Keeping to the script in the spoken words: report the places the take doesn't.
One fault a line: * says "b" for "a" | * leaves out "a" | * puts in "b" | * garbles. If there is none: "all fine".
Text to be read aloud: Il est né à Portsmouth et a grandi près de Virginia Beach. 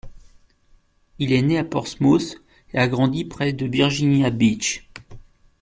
all fine